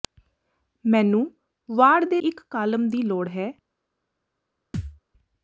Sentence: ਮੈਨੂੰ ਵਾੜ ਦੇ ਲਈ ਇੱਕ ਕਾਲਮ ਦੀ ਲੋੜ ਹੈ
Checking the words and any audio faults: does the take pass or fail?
fail